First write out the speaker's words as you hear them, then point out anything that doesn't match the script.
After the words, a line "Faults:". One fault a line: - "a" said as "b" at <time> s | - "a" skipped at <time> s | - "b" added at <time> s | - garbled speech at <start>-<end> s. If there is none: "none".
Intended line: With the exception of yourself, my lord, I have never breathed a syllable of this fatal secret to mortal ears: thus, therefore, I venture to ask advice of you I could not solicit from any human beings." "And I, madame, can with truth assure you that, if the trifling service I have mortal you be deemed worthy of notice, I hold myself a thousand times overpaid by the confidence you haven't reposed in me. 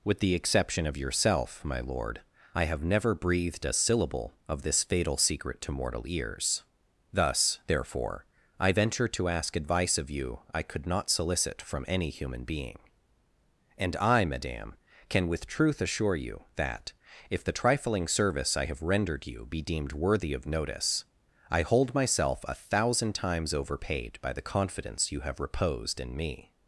With the exception of yourself, my lord, I have never breathed a syllable of this fatal secret to mortal ears: thus, therefore, I venture to ask advice of you I could not solicit from any human being." "And I, madame, can with truth assure you that, if the trifling service I have rendered you be deemed worthy of notice, I hold myself a thousand times overpaid by the confidence you have reposed in me.
Faults:
- "beings" said as "being" at 12.4 s
- "mortal" said as "rendered" at 18.8 s
- "haven't" said as "have" at 25.2 s